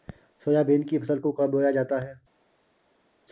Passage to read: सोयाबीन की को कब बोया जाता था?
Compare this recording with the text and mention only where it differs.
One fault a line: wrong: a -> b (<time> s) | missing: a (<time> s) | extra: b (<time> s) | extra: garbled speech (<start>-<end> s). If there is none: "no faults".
extra: फसल (1.0 s)
wrong: था -> है (2.0 s)